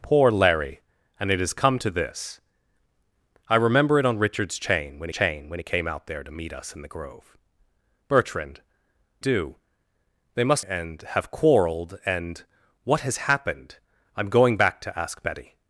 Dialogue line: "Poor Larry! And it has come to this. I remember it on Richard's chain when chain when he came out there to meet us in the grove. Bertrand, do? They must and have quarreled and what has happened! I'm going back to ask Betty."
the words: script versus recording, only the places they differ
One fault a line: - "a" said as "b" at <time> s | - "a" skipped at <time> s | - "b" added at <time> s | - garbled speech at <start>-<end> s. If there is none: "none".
none